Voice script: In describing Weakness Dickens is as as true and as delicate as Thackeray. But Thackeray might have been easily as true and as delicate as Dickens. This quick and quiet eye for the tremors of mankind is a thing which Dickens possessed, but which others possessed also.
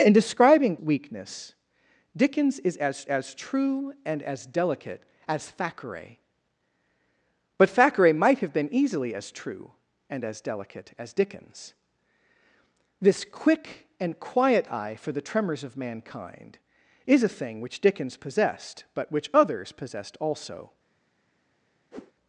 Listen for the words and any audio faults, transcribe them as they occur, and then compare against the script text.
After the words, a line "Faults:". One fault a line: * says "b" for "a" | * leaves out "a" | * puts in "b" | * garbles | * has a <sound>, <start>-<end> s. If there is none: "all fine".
In describing Weakness Dickens is as as true and as delicate as Thackeray. But Thackeray might have been easily as true and as delicate as Dickens. This quick and quiet eye for the tremors of mankind is a thing which Dickens possessed, but which others possessed also.
Faults:
* has a whoosh, 21.9-22.1 s